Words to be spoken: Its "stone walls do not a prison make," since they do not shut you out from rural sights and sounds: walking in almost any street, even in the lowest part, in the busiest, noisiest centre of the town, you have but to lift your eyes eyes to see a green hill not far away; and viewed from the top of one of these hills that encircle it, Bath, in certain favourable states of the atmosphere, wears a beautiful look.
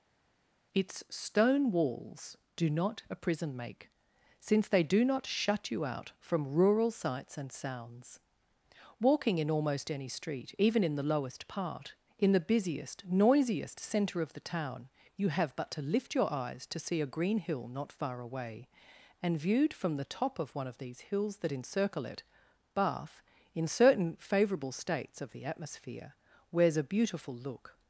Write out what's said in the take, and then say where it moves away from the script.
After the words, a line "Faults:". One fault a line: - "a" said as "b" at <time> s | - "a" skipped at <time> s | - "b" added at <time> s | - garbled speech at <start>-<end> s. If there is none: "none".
Its "stone walls do not a prison make," since they do not shut you out from rural sights and sounds: walking in almost any street, even in the lowest part, in the busiest, noisiest centre of the town, you have but to lift your eyes to see a green hill not far away; and viewed from the top of one of these hills that encircle it, Bath, in certain favourable states of the atmosphere, wears a beautiful look.
Faults:
- "eyes" skipped at 16.7 s